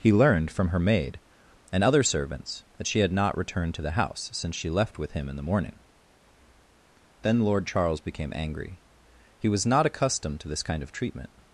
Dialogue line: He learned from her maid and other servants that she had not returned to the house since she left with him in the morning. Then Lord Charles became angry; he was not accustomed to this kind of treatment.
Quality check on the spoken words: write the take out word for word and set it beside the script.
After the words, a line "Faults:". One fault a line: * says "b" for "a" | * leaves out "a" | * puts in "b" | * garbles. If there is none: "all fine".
He learned from her maid and other servants that she had not returned to the house since she left with him in the morning. Then Lord Charles became angry; he was not accustomed to this kind of treatment.
Faults:
all fine